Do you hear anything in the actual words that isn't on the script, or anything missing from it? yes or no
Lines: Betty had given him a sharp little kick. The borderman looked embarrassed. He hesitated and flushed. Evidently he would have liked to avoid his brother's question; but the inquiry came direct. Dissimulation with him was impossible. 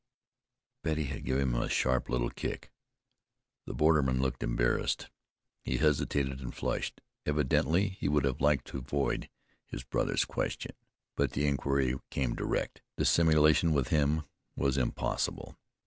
no